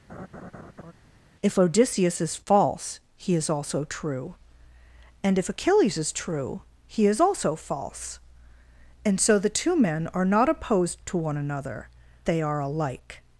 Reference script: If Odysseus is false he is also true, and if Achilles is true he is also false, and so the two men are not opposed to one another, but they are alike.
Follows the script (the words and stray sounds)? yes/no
no